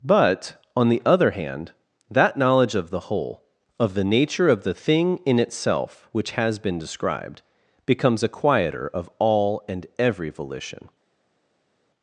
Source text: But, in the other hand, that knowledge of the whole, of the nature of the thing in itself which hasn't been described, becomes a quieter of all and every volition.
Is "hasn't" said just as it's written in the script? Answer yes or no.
no